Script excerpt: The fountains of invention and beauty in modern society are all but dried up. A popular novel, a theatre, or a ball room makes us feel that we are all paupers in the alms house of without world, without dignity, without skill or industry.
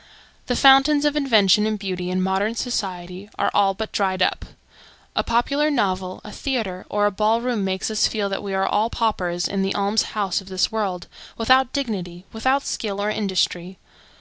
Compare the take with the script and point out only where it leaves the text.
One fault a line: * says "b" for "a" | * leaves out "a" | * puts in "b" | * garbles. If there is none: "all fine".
* says "this" for "without"